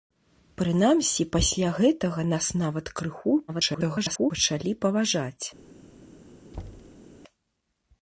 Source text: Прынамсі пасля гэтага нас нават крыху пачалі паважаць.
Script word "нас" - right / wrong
right